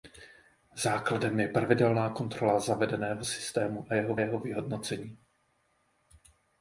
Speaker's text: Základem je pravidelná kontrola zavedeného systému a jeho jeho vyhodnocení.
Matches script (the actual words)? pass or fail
pass